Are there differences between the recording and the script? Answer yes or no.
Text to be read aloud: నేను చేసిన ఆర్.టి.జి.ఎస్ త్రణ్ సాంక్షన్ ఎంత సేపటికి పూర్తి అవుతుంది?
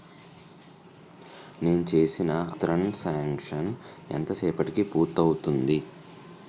yes